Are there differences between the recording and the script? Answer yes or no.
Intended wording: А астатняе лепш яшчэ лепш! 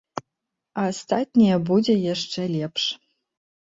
yes